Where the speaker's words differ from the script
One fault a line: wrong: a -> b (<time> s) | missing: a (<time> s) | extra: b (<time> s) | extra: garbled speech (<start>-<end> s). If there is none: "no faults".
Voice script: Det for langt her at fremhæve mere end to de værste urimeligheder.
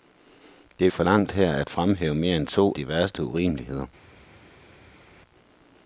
no faults